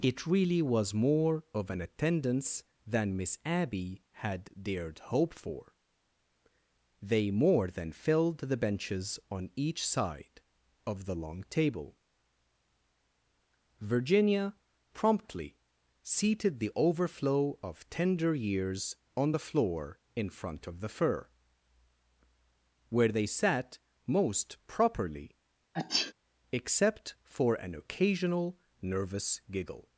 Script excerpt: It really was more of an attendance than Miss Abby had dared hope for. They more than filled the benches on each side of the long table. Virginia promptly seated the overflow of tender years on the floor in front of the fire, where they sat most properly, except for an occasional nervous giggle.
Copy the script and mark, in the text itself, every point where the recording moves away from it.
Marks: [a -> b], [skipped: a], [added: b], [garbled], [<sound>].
It really was more of an attendance than Miss Abby had dared hope for. They more than filled the benches on each side of the long table. Virginia promptly seated the overflow of tender years on the floor in front of the [fire, -> fur] where they sat most properly, [sneeze] except for an occasional nervous giggle.